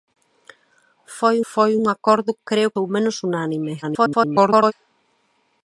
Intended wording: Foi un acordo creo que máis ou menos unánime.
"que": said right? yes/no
no